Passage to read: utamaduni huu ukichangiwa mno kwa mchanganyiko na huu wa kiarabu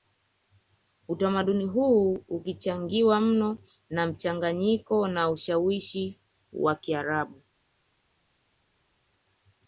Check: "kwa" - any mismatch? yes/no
yes